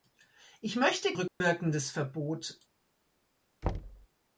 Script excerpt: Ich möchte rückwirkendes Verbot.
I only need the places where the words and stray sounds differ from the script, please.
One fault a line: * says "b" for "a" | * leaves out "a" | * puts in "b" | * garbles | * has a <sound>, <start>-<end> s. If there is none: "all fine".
* has a dropout, 1.3-1.4 s
* has a thud, 3.6-4.1 s